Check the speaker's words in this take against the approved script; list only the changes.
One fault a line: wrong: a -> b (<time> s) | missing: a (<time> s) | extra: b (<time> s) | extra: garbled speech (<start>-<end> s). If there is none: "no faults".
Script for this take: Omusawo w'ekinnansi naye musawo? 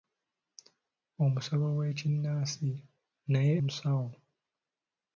no faults